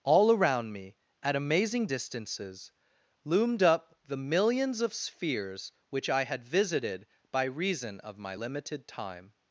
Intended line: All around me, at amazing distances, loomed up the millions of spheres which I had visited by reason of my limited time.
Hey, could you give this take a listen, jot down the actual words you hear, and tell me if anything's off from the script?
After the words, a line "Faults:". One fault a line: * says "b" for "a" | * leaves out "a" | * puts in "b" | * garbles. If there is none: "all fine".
All around me, at amazing distances, loomed up the millions of spheres which I had visited by reason of my limited time.
Faults:
all fine